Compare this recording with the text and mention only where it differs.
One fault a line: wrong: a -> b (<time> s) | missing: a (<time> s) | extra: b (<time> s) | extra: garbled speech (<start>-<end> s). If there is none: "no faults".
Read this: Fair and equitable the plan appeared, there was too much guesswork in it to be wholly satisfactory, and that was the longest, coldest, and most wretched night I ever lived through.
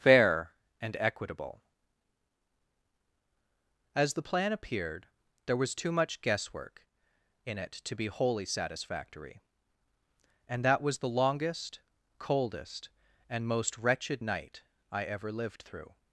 extra: as (4.0 s)